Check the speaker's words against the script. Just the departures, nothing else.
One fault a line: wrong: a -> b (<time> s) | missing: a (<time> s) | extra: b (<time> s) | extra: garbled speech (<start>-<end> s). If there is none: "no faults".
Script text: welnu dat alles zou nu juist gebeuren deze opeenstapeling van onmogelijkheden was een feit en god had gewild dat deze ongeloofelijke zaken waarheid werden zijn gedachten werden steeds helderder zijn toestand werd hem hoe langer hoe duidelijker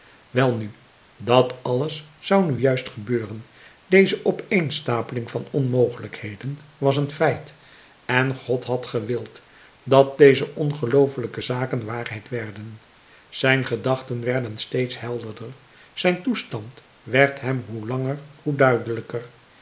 no faults